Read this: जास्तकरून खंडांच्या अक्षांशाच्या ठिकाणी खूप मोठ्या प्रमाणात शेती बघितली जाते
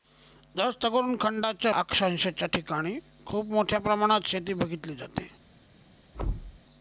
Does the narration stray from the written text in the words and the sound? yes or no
yes